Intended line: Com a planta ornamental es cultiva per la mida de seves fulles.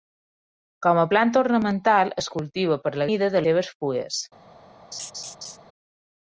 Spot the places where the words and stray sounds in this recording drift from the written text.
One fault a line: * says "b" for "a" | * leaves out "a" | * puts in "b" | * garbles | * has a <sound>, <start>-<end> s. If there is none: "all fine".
* has a laugh, 4.9-5.6 s